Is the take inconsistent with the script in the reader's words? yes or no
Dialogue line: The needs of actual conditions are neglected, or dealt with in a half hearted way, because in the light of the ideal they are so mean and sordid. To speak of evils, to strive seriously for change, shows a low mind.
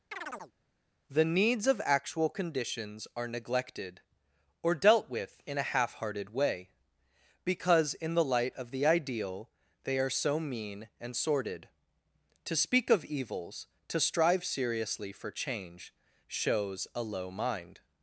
no